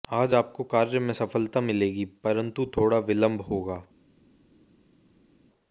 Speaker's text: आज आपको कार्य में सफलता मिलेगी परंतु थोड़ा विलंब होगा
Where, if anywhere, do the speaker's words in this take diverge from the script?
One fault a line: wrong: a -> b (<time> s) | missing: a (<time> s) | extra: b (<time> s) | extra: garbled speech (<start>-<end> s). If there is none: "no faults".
no faults